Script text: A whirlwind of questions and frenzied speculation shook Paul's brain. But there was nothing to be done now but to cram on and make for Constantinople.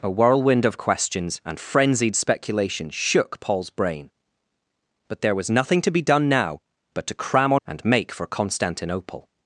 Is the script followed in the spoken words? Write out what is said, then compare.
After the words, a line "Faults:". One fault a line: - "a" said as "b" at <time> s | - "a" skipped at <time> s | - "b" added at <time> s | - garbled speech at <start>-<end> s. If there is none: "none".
A whirlwind of questions and frenzied speculation shook Paul's brain. But there was nothing to be done now but to cram on and make for Constantinople.
Faults:
none